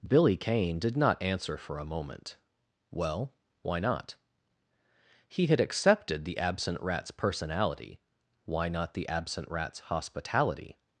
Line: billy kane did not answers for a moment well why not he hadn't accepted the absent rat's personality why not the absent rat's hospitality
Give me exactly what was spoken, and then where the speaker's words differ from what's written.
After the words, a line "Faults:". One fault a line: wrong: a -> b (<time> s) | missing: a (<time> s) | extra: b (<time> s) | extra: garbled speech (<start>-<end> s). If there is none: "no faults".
billy kane did not answer for a moment well why not he had accepted the absent rat's personality why not the absent rat's hospitality
Faults:
wrong: answers -> answer (1.2 s)
wrong: hadn't -> had (5.5 s)